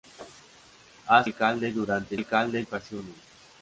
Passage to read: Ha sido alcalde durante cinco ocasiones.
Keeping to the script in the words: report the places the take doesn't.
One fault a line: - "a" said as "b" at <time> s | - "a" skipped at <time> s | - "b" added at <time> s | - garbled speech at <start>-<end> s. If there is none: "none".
- "sido" skipped at 1.2 s
- "cinco" said as "alcalde" at 2.1 s